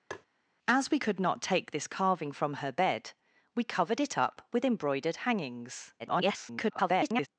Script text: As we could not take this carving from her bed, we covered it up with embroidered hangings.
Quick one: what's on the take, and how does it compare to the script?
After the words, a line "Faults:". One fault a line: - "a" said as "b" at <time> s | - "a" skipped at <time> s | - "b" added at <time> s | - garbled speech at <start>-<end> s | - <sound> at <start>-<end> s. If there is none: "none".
As we could not take this carving from her bed, we covered it up with embroidered hangings. [garbled]
Faults:
- tap at 0.1-0.3 s
- garbled speech at 6.0-7.3 s